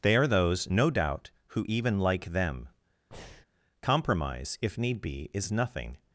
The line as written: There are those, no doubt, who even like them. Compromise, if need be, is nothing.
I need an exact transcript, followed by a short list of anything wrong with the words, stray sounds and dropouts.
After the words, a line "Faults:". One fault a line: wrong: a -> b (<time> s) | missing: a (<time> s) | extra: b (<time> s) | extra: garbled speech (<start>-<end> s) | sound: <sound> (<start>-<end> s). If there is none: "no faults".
They are those, no doubt, who even like them. Compromise, if need be, is nothing.
Faults:
wrong: There -> They (0.0 s)
sound: breath (3.1-3.5 s)